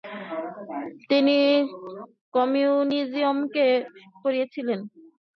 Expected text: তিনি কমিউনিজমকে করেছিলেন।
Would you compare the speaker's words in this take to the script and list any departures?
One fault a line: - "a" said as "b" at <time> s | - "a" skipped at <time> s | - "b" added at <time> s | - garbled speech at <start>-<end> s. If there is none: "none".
none